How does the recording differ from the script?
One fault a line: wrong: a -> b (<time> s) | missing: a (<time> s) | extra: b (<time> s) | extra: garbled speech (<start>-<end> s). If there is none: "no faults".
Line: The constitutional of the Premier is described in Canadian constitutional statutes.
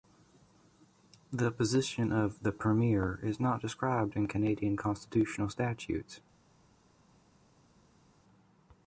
wrong: constitutional -> position (1.5 s)
extra: not (3.4 s)